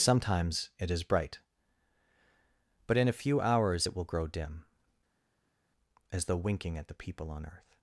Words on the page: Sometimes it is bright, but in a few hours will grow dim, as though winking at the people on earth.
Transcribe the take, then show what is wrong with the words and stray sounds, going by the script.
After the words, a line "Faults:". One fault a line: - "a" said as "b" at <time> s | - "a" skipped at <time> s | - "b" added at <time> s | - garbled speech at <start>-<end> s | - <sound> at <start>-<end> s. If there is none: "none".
Sometimes it is bright, but in a few hours it will grow dim, as though winking at the people on earth.
Faults:
- "it" added at 3.8 s